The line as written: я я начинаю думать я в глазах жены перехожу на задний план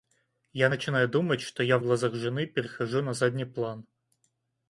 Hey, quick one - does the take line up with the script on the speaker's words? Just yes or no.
no